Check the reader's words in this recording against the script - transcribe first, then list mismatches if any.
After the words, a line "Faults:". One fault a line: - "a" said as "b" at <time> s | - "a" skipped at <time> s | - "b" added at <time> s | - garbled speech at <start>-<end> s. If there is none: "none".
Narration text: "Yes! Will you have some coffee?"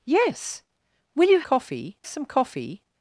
"Yes! Will you coffee some coffee?"
Faults:
- "have" said as "coffee" at 1.4 s